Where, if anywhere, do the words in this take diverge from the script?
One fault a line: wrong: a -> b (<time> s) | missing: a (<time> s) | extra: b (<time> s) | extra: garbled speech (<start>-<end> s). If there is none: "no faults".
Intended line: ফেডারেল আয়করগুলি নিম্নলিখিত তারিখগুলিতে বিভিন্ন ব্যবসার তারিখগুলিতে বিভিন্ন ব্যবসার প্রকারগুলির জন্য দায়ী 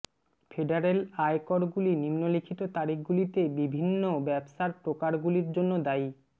missing: তারিখগুলিতে বিভিন্ন ব্যবসার (4.7 s)